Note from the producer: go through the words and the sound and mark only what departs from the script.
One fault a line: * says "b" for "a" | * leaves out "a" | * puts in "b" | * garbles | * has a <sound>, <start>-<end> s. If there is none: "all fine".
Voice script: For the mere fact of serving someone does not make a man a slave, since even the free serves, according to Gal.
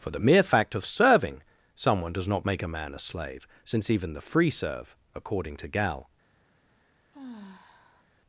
* says "serve" for "serves"
* has a sigh, 7.1-8.0 s